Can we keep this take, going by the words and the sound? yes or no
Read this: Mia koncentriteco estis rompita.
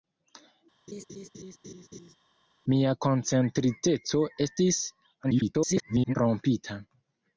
no